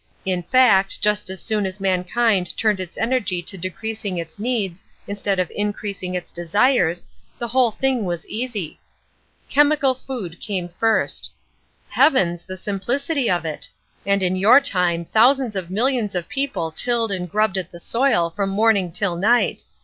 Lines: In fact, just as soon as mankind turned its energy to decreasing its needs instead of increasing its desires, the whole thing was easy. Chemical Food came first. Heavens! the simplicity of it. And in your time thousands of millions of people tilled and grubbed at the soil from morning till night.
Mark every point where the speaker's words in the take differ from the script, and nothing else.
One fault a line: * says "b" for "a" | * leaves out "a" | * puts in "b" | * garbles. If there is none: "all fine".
all fine